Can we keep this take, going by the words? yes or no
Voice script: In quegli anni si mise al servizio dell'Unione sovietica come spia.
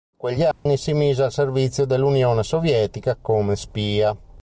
yes